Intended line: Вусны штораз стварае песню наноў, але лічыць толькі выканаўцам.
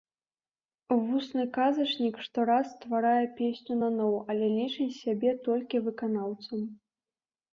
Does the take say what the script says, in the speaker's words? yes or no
no